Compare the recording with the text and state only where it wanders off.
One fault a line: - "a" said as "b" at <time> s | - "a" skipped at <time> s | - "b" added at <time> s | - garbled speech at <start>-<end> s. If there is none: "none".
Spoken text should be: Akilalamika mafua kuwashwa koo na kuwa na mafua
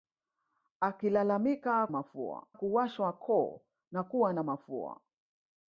none